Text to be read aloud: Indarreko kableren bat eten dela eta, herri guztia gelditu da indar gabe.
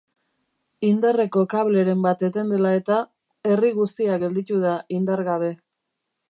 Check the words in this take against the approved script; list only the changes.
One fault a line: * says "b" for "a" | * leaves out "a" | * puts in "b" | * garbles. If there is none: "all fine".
all fine